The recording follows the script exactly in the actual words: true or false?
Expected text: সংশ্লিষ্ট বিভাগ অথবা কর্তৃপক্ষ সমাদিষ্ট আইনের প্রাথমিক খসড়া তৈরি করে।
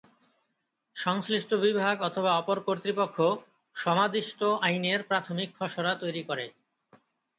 false